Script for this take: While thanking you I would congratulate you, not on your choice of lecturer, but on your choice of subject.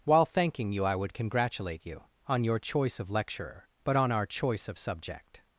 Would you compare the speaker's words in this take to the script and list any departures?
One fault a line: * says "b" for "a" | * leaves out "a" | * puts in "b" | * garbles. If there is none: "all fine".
* leaves out "not"
* says "our" for "your"